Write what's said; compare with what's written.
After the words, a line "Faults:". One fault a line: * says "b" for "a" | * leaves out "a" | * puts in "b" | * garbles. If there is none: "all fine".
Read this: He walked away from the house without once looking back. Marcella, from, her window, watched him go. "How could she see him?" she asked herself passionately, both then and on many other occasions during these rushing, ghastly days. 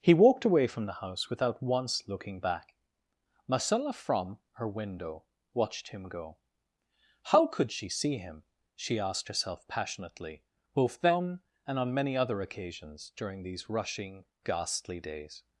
He walked away from the house without once looking back. Marcella, from, her window, watched him go. "How could she see him?" she asked herself passionately, both then and on many other occasions during these rushing, ghastly days.
Faults:
all fine